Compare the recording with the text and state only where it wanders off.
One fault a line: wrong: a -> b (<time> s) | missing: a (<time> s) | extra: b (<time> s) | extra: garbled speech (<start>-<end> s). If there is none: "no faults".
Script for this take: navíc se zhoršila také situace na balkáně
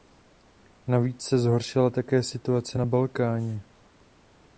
no faults